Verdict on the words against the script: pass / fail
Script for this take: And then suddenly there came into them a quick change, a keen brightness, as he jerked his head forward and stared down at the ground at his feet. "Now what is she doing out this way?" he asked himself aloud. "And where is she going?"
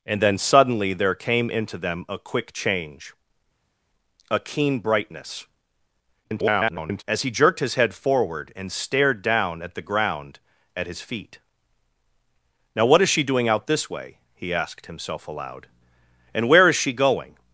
fail